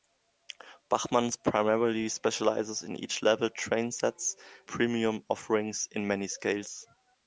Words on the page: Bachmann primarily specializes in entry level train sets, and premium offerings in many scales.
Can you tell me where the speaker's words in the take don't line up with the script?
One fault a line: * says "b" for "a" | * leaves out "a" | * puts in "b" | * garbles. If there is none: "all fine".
* leaves out "and"